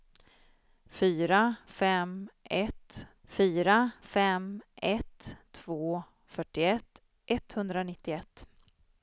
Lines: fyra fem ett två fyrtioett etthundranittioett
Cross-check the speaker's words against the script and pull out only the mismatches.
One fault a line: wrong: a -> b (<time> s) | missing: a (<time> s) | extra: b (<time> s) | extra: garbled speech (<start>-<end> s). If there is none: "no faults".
extra: fyra fem ett (3.2 s)